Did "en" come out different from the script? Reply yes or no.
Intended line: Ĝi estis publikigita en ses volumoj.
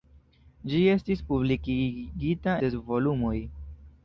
yes